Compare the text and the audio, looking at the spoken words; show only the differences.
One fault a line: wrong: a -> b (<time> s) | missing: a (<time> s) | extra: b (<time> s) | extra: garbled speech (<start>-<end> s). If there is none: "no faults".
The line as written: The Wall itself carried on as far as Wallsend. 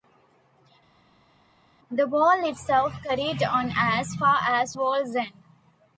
no faults